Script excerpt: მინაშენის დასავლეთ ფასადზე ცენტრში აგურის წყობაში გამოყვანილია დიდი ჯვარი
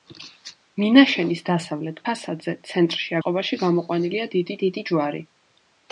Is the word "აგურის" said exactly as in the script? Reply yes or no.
no